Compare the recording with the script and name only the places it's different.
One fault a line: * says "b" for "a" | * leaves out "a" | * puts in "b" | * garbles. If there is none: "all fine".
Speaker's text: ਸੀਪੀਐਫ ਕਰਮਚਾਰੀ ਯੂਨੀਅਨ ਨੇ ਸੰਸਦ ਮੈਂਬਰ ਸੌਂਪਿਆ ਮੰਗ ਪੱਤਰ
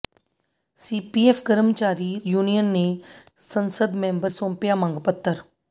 all fine